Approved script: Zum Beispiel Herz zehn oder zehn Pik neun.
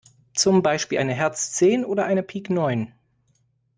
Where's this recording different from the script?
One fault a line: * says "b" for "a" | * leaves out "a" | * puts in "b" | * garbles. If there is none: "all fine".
* puts in "eine"
* says "eine" for "zehn"